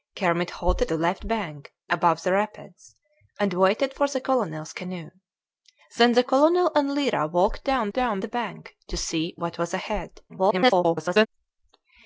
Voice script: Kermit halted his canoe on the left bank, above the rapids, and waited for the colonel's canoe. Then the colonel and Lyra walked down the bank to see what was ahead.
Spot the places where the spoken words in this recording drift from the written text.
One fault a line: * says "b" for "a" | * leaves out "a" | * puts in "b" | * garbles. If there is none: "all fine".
* leaves out "his canoe on"
* puts in "down"
* garbles